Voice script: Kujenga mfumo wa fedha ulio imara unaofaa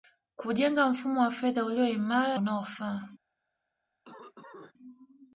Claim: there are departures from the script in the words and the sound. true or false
true